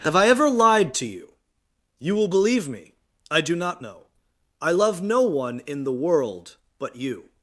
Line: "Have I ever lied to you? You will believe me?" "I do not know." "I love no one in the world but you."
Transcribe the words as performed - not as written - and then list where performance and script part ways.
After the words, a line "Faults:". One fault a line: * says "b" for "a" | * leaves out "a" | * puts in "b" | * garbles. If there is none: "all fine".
"Have I ever lied to you? You will believe me?" "I do not know." "I love no one in the world but you."
Faults:
all fine